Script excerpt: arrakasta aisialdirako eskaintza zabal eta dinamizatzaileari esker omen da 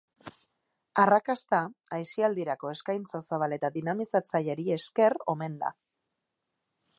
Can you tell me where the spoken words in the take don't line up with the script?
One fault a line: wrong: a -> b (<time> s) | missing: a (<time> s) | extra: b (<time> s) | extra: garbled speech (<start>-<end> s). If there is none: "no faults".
no faults